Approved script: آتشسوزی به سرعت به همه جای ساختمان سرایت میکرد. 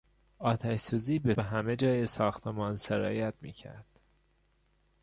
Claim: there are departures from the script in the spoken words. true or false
true